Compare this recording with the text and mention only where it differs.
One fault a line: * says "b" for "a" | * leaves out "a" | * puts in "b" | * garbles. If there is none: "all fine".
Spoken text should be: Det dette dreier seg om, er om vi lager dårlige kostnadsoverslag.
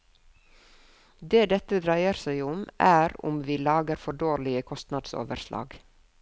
* puts in "for"